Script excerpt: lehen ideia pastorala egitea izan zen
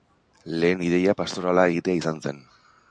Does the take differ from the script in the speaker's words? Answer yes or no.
no